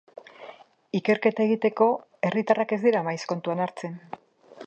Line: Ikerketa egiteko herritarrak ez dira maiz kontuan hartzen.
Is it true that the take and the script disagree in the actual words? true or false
false